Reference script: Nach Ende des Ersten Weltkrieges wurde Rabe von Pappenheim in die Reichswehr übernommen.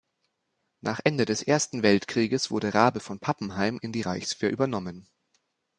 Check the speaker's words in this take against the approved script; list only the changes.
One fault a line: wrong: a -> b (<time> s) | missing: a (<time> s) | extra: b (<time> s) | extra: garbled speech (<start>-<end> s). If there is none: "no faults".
no faults